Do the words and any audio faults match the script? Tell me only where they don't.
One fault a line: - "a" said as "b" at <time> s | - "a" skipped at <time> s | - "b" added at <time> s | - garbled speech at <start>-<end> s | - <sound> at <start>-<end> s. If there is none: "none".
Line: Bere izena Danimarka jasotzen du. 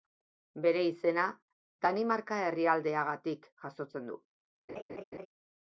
- "herrialdeagatik" added at 2.5 s
- laugh at 4.7-5.3 s